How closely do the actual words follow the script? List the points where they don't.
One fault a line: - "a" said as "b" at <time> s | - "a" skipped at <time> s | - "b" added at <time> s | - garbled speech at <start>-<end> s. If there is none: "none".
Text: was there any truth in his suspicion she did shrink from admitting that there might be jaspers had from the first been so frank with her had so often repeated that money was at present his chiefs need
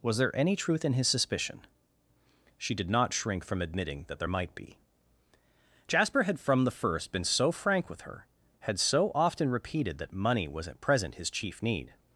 - "not" added at 2.9 s
- "jaspers" said as "jasper" at 5.9 s
- "chiefs" said as "chief" at 11.3 s